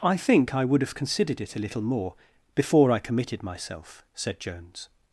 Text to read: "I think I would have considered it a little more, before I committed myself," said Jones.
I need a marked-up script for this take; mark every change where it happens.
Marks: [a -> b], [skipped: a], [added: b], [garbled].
"I think I would have considered it a little more, before I committed myself," said Jones.